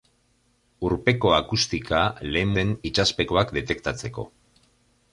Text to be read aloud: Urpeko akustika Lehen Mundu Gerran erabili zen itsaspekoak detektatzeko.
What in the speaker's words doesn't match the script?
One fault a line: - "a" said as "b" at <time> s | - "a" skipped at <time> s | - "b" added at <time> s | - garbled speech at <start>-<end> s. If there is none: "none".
- "Mundu Gerran erabili" skipped at 2.5 s